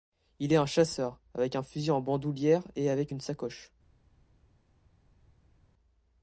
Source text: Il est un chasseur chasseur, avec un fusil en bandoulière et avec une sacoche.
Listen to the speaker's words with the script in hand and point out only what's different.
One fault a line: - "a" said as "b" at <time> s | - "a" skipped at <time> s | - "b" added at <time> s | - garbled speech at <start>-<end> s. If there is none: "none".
- "chasseur" skipped at 1.2 s